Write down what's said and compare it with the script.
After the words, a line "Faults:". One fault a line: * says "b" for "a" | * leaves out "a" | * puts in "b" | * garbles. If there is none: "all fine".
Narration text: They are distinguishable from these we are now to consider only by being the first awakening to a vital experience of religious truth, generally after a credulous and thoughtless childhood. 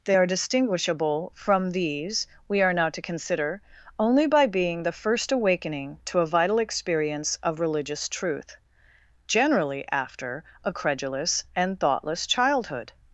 They are distinguishable from these we are now to consider only by being the first awakening to a vital experience of religious truth, generally after a credulous and thoughtless childhood.
Faults:
all fine